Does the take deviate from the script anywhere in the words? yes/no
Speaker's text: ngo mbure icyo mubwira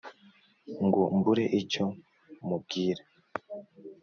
no